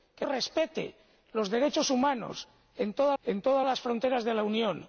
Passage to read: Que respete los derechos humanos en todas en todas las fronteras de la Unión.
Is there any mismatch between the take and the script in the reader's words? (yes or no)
no